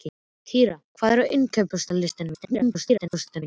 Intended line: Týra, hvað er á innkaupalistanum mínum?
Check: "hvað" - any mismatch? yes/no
no